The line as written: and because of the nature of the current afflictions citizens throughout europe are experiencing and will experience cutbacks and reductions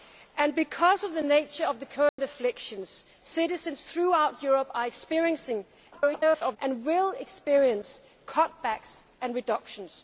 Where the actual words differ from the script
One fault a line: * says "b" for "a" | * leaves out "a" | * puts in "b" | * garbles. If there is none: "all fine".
* garbles